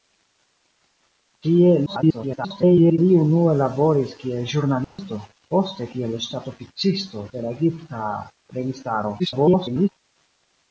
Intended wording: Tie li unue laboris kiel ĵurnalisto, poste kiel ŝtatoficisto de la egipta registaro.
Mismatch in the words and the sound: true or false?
true